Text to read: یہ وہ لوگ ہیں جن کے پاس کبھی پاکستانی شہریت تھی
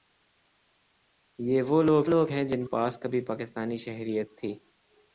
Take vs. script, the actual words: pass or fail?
fail